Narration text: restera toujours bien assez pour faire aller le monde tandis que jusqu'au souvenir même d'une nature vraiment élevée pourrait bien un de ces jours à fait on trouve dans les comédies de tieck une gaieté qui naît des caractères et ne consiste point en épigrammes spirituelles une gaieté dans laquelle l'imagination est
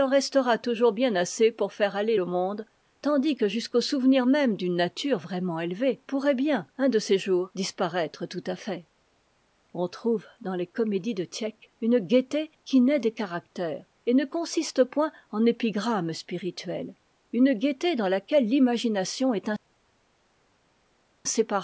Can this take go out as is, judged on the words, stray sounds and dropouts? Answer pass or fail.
fail